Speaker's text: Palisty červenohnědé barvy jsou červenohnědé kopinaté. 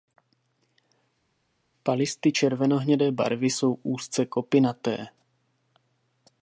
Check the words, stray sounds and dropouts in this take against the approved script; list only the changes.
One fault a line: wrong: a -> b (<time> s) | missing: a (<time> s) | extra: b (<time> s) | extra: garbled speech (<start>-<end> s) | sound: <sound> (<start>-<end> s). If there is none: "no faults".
wrong: červenohnědé -> úzce (3.8 s)